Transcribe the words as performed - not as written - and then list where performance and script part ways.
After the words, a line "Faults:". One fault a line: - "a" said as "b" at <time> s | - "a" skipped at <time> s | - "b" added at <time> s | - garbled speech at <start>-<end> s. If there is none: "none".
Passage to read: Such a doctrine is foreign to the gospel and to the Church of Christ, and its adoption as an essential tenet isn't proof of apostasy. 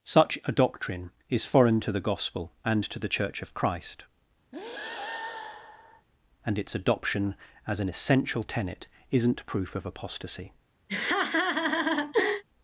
Such a doctrine is foreign to the gospel and to the Church of Christ, and its adoption as an essential tenet isn't proof of apostasy.
Faults:
none